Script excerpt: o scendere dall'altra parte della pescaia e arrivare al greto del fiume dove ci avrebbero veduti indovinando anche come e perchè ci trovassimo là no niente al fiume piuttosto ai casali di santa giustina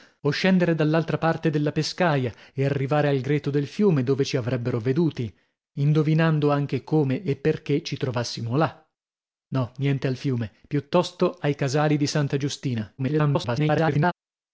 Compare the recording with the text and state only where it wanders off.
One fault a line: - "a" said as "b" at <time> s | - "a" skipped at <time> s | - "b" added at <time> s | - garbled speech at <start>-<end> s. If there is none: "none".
- garbled speech at 13.0-14.1 s